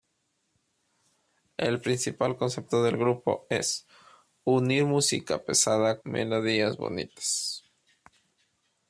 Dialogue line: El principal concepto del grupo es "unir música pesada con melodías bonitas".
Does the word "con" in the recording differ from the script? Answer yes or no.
yes